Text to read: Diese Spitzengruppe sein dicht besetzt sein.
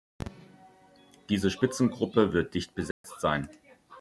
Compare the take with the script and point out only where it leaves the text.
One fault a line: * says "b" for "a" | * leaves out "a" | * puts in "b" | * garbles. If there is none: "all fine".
* says "wird" for "sein"